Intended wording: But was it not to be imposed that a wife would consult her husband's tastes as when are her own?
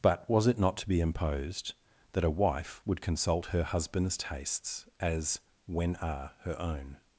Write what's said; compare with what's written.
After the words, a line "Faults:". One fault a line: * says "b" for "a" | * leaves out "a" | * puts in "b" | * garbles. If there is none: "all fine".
But was it not to be imposed that a wife would consult her husband's tastes as when are her own?
Faults:
all fine